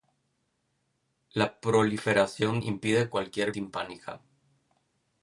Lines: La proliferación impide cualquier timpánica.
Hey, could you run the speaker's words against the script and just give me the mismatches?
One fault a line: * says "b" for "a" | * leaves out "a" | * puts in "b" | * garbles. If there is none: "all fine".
all fine